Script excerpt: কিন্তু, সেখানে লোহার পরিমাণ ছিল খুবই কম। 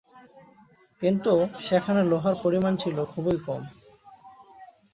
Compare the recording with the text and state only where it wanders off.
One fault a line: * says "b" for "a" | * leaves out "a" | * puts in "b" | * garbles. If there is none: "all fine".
all fine